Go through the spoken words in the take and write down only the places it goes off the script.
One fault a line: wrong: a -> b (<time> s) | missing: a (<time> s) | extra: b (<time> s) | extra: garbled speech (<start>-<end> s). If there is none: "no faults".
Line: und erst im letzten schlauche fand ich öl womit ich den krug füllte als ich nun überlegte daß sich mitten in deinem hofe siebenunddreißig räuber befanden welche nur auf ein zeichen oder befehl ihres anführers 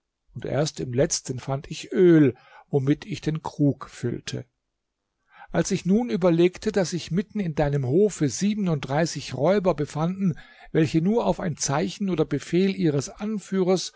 missing: schlauche (1.4 s)